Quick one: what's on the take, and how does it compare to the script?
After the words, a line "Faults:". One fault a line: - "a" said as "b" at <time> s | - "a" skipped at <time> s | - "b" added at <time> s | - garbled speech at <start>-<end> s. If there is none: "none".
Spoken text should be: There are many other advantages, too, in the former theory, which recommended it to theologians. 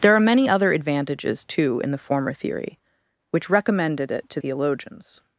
There are many other advantages, too, in the former theory, which recommended it to theologians.
Faults:
none